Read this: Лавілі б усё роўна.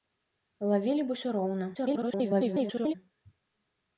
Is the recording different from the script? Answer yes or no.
yes